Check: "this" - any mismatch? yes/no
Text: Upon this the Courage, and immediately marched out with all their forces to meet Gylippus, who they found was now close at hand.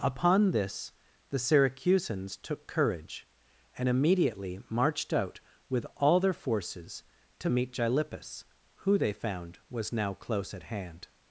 no